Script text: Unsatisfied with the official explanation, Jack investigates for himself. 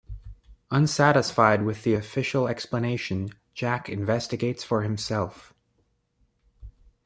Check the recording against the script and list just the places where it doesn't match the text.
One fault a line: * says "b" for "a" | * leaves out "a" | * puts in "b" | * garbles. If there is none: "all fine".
all fine